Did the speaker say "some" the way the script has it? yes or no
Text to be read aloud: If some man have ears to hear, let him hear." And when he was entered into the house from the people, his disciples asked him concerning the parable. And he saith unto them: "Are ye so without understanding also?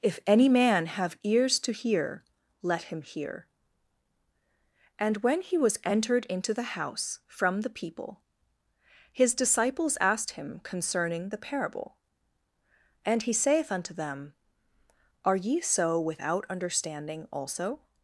no